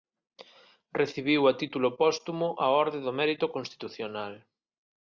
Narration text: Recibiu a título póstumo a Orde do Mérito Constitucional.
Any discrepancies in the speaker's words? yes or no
no